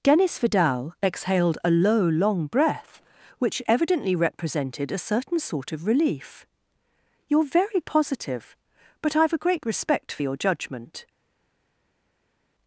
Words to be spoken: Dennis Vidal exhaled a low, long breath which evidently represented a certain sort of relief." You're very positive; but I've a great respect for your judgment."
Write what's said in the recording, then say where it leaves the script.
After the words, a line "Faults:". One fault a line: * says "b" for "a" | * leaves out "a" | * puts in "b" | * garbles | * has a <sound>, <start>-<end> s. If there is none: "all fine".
Dennis Vidal exhaled a low, long breath which evidently represented a certain sort of relief." You're very positive; but I've a great respect for your judgment."
Faults:
all fine